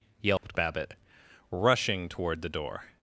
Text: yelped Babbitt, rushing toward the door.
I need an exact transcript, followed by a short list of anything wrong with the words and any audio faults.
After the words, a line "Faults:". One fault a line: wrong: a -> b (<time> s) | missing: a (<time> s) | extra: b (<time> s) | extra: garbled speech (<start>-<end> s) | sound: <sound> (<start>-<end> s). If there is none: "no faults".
yelped Babbitt, rushing toward the door.
Faults:
sound: dropout (0.4-0.4 s)